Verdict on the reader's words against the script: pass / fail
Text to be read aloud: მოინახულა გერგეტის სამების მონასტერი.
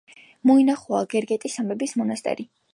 pass